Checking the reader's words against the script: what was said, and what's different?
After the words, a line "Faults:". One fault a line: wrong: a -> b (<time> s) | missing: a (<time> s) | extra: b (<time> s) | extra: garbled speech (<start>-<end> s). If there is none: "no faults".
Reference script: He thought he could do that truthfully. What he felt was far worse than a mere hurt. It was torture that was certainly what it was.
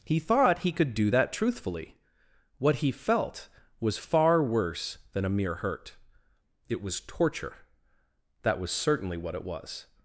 He thought he could do that truthfully. What he felt was far worse than a mere hurt. It was torture that was certainly what it was.
Faults:
no faults